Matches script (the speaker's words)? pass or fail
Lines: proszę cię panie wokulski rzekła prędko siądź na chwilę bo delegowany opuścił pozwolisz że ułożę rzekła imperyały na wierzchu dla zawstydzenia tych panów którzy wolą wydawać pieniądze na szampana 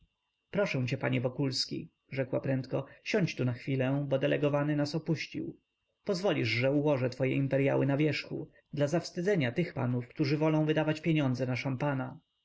fail